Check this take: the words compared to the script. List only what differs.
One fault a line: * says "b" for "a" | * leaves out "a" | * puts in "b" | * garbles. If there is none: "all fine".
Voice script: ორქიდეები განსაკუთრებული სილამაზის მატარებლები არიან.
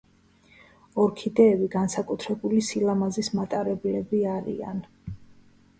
all fine